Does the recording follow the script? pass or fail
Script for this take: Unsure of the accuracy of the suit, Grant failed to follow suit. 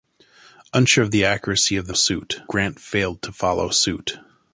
pass